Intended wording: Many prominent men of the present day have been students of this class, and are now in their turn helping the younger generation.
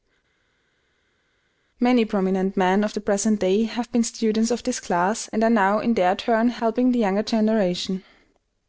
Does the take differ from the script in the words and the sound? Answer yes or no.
no